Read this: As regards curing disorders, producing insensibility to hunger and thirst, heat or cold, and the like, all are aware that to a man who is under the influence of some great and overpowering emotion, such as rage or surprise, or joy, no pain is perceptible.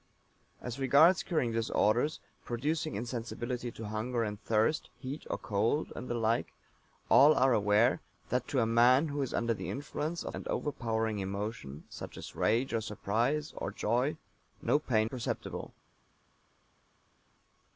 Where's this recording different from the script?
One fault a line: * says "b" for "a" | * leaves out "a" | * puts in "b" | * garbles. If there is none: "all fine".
* leaves out "some great"
* leaves out "is"